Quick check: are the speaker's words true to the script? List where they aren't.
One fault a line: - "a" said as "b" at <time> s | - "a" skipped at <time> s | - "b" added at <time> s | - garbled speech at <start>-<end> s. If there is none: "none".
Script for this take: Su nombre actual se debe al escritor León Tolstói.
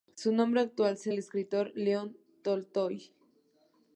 - "debe" skipped at 1.1 s